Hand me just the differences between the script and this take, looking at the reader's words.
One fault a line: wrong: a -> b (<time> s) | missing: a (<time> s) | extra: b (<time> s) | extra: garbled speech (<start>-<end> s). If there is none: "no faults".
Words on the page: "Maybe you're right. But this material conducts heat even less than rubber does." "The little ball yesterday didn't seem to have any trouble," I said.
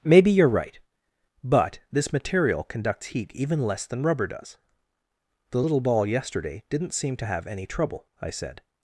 no faults